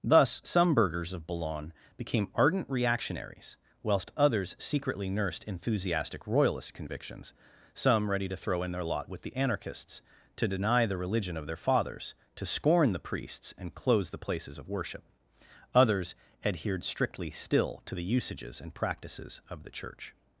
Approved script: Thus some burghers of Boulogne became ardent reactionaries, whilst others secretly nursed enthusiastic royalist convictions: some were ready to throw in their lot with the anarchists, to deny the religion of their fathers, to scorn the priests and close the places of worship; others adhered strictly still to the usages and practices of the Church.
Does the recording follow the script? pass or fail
fail